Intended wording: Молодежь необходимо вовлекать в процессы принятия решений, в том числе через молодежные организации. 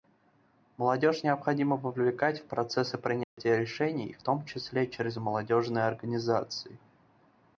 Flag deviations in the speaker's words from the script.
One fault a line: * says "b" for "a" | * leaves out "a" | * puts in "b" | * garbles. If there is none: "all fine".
all fine